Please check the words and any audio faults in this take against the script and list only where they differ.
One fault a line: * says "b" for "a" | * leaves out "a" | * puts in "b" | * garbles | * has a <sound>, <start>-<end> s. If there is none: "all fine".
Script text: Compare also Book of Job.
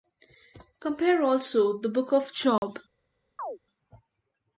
* puts in "the"
* has a dropout, 2.6-2.6 s
* has a chirp, 3.4-3.6 s